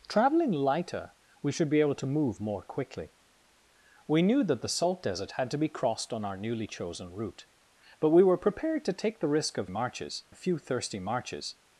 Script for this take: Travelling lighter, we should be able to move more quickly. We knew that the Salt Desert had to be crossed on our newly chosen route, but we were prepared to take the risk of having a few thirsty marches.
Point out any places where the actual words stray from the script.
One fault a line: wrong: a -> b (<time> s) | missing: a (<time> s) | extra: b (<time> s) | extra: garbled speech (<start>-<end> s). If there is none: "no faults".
wrong: having -> marches (9.7 s)